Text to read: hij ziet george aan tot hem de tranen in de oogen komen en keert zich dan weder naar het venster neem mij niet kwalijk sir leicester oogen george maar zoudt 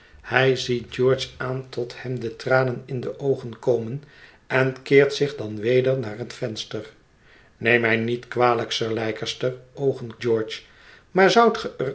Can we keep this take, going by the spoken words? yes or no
yes